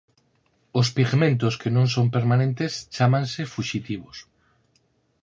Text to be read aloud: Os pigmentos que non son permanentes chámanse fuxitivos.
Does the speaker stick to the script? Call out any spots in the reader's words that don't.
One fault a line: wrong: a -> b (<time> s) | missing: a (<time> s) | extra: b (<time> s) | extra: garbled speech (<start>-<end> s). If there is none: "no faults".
no faults